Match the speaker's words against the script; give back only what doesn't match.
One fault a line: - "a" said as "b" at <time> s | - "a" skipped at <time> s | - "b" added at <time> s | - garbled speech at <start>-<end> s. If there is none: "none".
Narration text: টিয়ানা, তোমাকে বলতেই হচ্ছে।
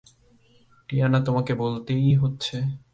none